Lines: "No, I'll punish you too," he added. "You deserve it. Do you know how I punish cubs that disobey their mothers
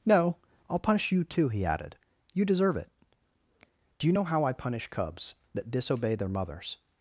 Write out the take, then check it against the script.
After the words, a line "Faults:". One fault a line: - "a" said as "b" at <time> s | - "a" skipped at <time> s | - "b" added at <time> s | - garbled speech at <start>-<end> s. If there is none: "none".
"No, I'll punish you too," he added. "You deserve it. Do you know how I punish cubs that disobey their mothers
Faults:
none